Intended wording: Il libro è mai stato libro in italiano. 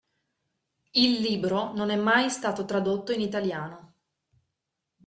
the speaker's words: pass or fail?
fail